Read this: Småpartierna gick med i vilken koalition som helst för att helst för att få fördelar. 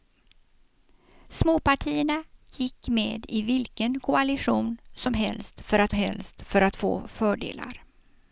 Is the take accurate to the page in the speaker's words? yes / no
yes